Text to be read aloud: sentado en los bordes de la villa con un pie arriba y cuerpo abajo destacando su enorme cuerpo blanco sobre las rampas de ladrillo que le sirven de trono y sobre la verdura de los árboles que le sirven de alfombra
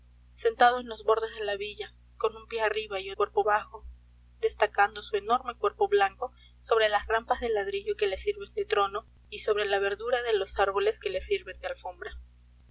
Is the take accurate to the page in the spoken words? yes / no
yes